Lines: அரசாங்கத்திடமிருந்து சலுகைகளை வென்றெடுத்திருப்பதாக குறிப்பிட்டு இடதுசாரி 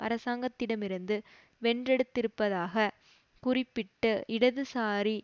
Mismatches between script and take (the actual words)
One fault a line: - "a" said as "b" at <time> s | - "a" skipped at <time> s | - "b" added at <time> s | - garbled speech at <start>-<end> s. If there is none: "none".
- "சலுகைகளை" skipped at 1.1 s